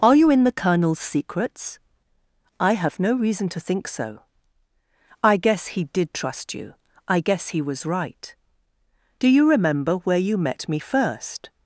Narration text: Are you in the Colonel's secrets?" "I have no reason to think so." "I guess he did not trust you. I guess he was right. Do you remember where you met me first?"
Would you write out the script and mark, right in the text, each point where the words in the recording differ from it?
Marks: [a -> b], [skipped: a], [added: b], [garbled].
Are you in the Colonel's secrets?" "I have no reason to think so." "I guess he did [skipped: not] trust you. I guess he was right. Do you remember where you met me first?"